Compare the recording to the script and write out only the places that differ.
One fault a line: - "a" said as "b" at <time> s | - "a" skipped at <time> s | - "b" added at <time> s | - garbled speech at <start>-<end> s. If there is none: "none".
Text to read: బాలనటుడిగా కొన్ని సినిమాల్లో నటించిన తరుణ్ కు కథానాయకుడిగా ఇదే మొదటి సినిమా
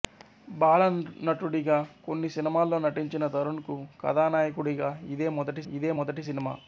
- "ఇదే మొదటి" added at 5.7 s